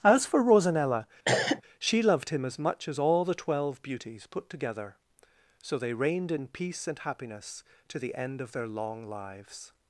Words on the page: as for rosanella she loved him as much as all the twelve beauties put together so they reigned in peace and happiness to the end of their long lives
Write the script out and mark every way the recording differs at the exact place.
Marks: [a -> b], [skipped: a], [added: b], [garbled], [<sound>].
as for rosanella [cough] she loved him as much as all the twelve beauties put together so they reigned in peace and happiness to the end of their long lives